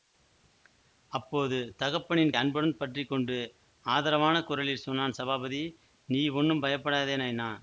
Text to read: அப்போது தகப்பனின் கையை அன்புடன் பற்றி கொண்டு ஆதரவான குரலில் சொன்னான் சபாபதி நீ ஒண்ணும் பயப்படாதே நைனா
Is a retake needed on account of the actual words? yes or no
yes